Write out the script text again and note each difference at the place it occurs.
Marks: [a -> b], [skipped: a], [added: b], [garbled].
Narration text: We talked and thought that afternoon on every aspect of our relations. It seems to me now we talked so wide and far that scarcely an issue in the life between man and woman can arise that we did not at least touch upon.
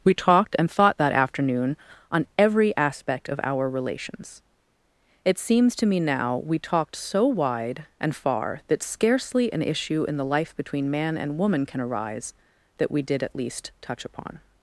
We talked and thought that afternoon on every aspect of our relations. It seems to me now we talked so wide and far that scarcely an issue in the life between man and woman can arise that we did [skipped: not] at least touch upon.